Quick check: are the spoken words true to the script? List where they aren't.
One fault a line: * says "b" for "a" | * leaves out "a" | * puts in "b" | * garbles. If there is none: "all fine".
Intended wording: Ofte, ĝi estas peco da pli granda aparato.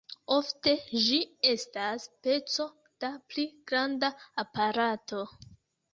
all fine